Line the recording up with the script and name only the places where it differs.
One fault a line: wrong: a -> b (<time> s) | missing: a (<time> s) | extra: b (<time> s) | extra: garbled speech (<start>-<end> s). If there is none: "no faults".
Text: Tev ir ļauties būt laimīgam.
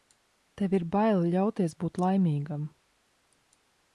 extra: bail (0.9 s)